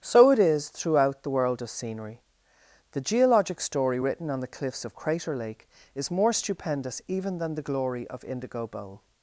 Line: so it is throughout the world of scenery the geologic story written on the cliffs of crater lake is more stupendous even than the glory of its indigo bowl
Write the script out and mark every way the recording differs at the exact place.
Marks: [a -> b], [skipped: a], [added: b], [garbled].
so it is throughout the world of scenery the geologic story written on the cliffs of crater lake is more stupendous even than the glory of [skipped: its] indigo bowl